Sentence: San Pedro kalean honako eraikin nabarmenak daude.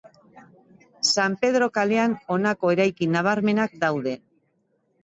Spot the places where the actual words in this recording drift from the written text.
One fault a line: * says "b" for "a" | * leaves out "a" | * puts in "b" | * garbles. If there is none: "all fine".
all fine